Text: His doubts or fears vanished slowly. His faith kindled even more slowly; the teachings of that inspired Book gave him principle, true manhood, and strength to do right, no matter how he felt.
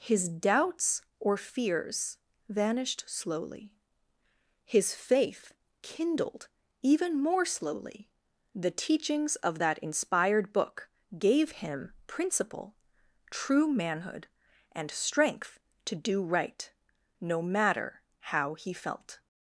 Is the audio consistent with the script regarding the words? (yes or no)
yes